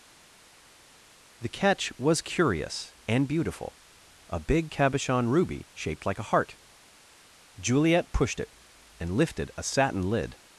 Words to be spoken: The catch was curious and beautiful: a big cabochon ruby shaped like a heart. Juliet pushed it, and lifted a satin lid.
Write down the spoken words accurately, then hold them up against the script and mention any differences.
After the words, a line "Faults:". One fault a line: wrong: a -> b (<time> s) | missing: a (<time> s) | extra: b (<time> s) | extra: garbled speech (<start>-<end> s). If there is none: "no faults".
The catch was curious and beautiful: a big cabochon ruby shaped like a heart. Juliet pushed it, and lifted a satin lid.
Faults:
no faults